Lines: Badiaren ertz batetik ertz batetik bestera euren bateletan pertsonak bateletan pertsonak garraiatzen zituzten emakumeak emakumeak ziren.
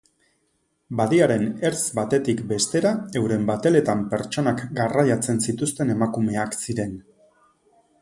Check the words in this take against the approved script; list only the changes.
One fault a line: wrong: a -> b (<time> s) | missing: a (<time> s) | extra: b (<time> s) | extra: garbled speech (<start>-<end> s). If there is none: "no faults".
missing: ertz batetik (2.4 s)
missing: bateletan pertsonak (4.7 s)
missing: emakumeak (6.6 s)